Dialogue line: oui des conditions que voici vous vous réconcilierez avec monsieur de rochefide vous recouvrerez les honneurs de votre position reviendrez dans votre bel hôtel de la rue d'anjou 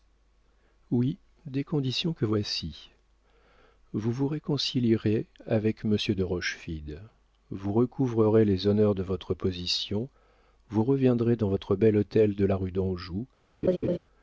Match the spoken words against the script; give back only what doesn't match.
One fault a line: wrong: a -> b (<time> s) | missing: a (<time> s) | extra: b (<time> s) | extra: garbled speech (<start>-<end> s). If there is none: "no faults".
extra: vous (10.7 s)